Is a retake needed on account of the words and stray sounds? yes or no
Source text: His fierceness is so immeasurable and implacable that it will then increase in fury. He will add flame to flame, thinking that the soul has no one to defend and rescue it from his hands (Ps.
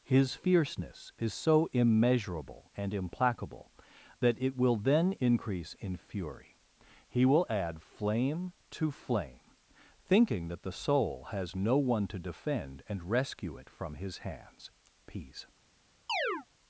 yes